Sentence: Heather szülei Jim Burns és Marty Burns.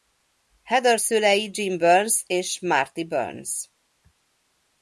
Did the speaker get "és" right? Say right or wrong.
right